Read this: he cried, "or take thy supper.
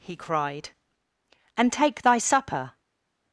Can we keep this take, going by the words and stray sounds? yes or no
no